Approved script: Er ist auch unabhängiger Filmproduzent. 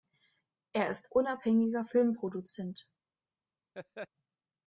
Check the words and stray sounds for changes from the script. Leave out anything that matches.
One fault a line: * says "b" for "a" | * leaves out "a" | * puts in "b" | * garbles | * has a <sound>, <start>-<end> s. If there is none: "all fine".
* leaves out "auch"
* has a laugh, 3.7-4.1 s